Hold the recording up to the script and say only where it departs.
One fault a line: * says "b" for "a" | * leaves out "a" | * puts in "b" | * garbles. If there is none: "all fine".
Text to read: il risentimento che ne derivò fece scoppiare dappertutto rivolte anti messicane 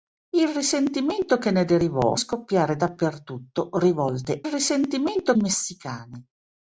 * leaves out "fece"
* says "risentimento" for "anti"